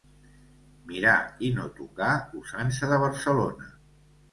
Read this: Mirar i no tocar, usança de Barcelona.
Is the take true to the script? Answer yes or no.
yes